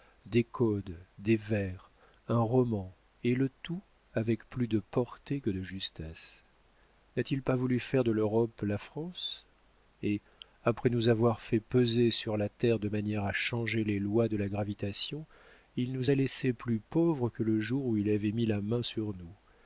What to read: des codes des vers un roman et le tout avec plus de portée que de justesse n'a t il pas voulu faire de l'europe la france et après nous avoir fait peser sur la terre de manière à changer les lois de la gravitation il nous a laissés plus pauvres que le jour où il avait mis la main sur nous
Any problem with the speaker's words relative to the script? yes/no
no